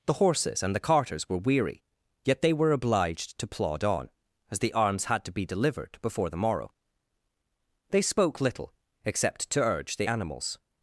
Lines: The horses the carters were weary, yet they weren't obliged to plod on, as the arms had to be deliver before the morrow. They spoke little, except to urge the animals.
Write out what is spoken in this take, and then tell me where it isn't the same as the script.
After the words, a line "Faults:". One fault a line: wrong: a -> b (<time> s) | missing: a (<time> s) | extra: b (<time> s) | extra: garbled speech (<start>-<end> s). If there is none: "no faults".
The horses and the carters were weary, yet they were obliged to plod on, as the arms had to be delivered before the morrow. They spoke little, except to urge the animals.
Faults:
extra: and (0.6 s)
wrong: weren't -> were (2.5 s)
wrong: deliver -> delivered (5.5 s)